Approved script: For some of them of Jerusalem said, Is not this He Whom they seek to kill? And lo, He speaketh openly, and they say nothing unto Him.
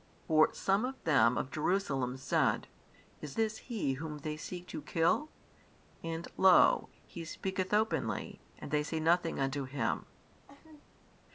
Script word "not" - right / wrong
wrong